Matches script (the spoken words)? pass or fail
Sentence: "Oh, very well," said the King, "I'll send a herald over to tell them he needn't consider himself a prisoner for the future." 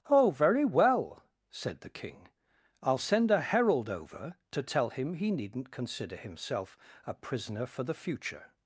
fail